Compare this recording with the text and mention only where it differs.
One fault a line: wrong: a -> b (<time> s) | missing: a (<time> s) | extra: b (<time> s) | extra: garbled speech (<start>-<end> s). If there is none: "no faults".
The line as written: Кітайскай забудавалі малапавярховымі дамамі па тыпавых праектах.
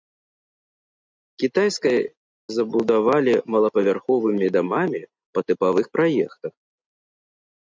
no faults